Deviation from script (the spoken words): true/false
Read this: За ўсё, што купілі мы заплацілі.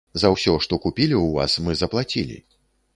true